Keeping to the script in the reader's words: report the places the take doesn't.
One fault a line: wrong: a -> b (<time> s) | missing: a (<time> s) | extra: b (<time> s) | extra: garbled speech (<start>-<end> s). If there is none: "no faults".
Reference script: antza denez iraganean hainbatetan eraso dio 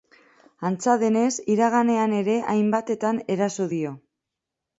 extra: ere (2.2 s)